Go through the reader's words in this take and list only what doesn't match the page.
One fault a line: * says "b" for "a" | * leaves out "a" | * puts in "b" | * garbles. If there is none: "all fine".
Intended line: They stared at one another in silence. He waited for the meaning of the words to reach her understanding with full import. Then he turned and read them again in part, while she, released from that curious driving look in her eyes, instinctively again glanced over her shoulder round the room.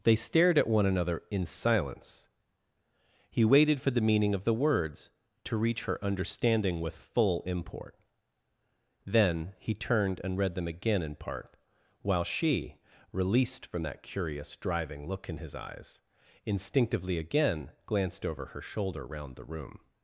* says "his" for "her"